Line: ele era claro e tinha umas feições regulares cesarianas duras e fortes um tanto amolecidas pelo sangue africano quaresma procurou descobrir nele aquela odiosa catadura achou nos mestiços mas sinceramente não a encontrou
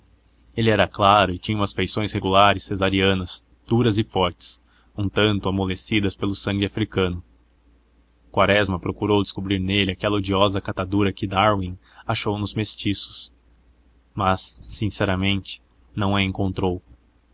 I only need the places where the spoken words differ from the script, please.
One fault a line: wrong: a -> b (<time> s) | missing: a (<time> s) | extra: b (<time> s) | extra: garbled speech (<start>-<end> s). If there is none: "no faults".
extra: que darwin (11.1 s)